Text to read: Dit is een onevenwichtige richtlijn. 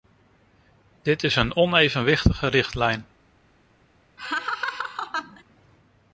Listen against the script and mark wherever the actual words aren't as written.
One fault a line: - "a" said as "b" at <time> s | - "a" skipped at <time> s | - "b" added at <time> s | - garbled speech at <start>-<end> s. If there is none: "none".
none